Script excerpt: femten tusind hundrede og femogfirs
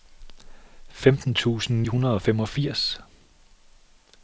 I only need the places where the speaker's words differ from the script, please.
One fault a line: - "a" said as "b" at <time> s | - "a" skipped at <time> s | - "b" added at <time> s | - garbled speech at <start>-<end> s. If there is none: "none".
none